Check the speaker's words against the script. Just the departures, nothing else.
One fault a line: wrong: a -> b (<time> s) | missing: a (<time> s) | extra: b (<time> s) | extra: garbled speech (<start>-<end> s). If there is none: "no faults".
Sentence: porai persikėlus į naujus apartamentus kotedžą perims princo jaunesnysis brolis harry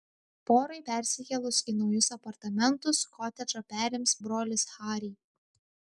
missing: princo jaunesnysis (4.2 s)